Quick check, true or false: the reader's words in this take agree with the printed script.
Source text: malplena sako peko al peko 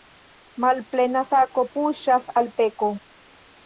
false